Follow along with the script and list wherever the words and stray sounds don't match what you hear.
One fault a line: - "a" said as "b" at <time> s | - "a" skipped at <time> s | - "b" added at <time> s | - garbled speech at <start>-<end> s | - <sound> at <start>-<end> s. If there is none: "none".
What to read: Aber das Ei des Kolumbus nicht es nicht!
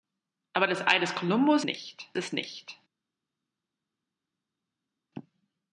none